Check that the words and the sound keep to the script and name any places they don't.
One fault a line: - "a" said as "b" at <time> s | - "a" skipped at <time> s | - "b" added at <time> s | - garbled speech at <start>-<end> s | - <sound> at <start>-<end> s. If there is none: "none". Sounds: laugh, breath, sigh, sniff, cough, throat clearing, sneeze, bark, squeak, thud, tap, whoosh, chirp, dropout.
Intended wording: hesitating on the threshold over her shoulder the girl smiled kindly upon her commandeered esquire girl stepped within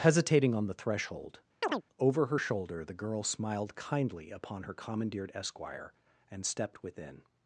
- chirp at 1.6-1.8 s
- "girl" said as "and" at 6.3 s